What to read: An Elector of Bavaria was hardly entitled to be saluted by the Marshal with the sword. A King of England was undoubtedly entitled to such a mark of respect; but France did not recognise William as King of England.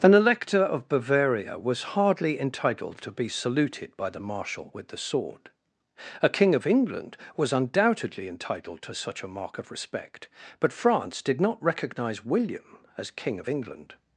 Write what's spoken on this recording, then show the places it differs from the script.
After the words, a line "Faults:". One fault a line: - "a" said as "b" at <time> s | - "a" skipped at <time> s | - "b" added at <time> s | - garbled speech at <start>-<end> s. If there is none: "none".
An Elector of Bavaria was hardly entitled to be saluted by the Marshal with the sword. A King of England was undoubtedly entitled to such a mark of respect; but France did not recognise William as King of England.
Faults:
none